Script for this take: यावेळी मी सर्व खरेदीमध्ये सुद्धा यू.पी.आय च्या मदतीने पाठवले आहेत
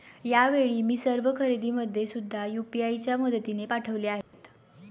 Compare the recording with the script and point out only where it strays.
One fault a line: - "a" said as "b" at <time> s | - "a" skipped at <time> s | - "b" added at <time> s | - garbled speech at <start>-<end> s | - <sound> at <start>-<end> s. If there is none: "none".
- dropout at 4.2-4.3 s